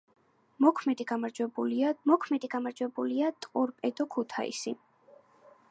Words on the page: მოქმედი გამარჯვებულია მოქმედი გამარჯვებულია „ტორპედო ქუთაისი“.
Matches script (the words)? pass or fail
pass